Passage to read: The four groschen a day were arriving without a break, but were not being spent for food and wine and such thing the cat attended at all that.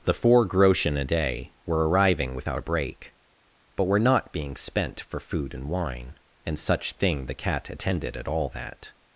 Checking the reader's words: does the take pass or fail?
pass